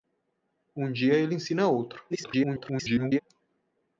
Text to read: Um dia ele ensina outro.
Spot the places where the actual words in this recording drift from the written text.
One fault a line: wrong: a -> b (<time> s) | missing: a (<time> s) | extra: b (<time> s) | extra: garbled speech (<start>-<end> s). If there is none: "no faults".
extra: garbled speech (2.1-3.2 s)